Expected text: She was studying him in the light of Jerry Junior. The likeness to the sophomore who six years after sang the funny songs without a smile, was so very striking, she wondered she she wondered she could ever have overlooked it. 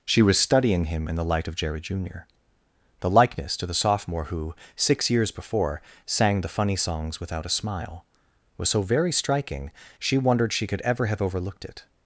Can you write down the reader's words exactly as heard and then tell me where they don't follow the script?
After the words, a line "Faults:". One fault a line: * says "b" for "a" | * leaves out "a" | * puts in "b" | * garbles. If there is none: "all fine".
She was studying him in the light of Jerry Junior. The likeness to the sophomore who six years before sang the funny songs without a smile, was so very striking, she wondered she could ever have overlooked it.
Faults:
* says "before" for "after"
* leaves out "she wondered she"